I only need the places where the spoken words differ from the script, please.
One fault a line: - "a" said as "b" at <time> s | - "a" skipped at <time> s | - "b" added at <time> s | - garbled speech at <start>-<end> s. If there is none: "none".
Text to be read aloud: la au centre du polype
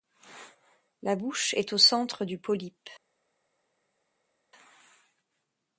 - "bouche est" added at 1.1 s